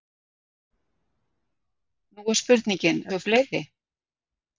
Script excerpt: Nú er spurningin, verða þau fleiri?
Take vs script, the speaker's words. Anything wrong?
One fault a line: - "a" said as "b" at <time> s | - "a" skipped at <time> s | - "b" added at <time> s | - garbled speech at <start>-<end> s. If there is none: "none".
- "verða" skipped at 3.0 s